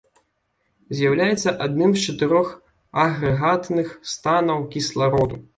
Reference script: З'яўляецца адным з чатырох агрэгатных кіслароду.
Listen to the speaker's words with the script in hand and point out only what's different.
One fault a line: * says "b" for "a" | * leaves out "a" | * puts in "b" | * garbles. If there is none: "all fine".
* puts in "станаў"